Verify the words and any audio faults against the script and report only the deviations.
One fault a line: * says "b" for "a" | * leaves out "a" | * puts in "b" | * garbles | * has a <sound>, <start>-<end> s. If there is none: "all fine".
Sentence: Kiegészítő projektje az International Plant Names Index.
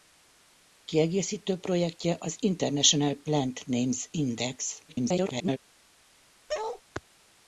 * garbles
* has a bark, 6.5-6.8 s